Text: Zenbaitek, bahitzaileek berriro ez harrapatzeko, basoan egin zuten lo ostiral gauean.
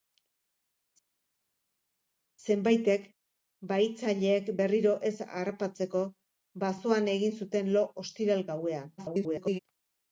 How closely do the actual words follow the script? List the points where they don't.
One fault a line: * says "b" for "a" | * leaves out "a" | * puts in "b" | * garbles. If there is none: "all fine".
* garbles